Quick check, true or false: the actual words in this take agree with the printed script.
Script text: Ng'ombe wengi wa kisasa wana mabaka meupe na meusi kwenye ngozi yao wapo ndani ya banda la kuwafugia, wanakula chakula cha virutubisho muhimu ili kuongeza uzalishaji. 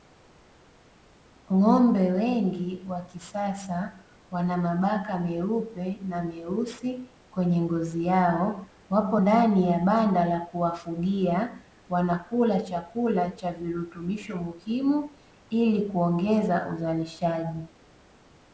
true